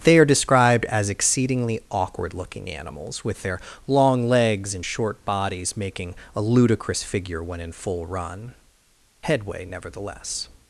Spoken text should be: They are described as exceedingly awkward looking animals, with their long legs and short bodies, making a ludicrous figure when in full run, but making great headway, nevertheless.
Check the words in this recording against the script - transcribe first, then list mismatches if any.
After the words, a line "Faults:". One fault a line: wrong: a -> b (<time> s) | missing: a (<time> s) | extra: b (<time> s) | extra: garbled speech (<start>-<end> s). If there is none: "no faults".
They are described as exceedingly awkward looking animals, with their long legs and short bodies, making a ludicrous figure when in full run, headway, nevertheless.
Faults:
missing: but making great (8.5 s)